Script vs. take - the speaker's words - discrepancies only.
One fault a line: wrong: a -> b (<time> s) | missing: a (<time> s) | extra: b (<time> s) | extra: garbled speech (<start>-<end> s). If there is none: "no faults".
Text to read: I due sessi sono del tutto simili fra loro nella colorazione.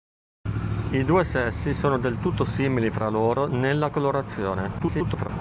extra: garbled speech (4.8-5.3 s)